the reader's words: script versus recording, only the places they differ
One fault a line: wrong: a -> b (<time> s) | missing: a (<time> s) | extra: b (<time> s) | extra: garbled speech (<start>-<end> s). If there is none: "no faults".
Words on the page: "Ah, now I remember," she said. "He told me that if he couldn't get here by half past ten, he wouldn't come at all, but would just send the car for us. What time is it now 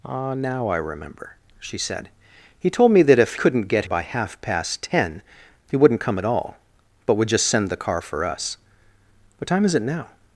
missing: he (3.4 s)
missing: here (3.9 s)